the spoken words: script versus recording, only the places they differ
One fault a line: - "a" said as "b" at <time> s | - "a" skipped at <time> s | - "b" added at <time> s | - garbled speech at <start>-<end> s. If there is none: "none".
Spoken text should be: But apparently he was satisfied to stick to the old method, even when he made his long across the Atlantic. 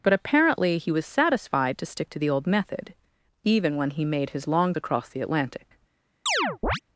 none